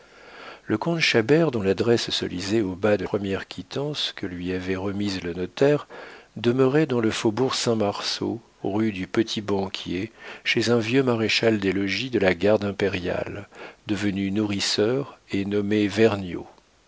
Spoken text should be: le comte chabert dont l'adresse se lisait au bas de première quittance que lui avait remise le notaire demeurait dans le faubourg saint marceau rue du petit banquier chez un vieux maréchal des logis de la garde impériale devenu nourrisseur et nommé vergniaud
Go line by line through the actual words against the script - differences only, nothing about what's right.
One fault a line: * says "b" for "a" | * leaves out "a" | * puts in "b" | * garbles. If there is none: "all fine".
all fine